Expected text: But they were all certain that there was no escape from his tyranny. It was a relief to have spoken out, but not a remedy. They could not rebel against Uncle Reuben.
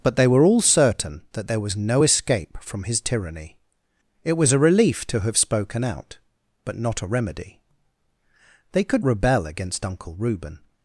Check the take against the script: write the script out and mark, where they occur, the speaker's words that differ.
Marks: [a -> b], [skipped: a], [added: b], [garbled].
But they were all certain that there was no escape from his tyranny. It was a relief to have spoken out, but not a remedy. They could [skipped: not] rebel against Uncle Reuben.